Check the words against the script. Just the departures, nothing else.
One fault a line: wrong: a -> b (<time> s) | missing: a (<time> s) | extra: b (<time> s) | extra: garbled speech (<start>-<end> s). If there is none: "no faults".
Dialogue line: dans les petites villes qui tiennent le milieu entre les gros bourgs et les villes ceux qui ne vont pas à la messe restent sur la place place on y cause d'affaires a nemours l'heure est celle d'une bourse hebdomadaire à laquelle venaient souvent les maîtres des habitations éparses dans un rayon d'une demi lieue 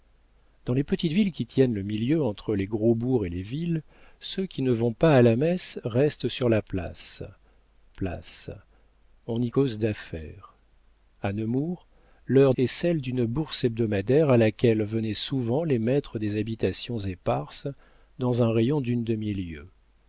no faults